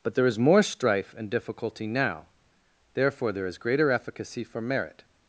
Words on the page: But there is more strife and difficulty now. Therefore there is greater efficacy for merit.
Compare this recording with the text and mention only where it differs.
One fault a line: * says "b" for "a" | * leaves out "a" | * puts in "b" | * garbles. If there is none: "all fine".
all fine